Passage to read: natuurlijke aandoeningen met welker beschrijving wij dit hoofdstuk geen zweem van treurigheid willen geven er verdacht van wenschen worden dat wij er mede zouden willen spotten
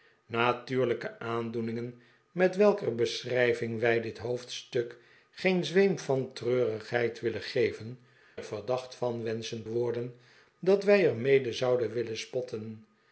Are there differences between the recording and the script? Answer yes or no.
no